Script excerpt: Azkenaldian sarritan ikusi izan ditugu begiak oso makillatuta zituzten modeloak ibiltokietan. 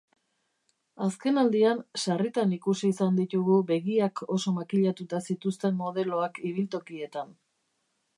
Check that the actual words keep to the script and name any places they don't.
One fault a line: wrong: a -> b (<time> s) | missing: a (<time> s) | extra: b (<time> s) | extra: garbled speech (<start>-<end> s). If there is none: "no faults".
no faults